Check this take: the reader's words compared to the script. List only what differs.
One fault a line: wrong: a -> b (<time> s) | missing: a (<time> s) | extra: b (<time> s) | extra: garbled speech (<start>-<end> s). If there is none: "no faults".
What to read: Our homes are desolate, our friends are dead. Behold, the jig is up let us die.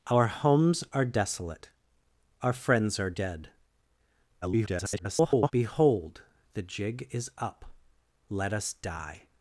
extra: garbled speech (4.4-5.5 s)